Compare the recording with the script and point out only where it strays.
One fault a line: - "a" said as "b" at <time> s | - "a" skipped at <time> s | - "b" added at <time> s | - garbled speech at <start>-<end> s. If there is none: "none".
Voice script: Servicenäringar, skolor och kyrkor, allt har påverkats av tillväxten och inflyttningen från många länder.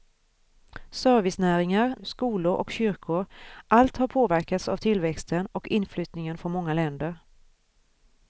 none